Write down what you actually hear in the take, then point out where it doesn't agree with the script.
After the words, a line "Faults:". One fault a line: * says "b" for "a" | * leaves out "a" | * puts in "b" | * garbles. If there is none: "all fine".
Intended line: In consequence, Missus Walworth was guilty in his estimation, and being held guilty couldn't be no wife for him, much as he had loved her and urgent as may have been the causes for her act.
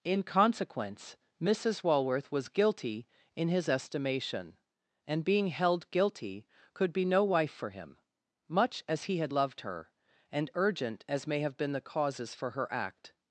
In consequence, Missus Walworth was guilty in his estimation, and being held guilty could be no wife for him, much as he had loved her and urgent as may have been the causes for her act.
Faults:
* says "could" for "couldn't"